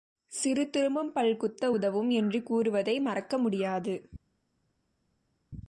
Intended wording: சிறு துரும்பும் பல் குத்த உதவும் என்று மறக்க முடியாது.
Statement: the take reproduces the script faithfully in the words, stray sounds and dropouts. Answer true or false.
false